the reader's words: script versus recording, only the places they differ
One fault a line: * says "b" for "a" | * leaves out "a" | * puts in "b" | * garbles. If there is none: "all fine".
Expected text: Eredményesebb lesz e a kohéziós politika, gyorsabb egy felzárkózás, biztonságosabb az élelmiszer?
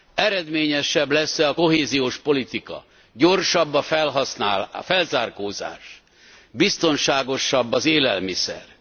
* says "a" for "egy"